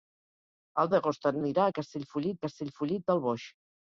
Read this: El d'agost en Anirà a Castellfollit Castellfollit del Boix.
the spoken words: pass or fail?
pass